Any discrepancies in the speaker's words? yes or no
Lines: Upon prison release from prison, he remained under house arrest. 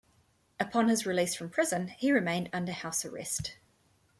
yes